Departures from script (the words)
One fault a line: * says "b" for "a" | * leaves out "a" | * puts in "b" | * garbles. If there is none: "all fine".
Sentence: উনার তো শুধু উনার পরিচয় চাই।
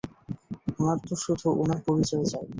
all fine